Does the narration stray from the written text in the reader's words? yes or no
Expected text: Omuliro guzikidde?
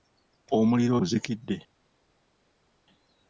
no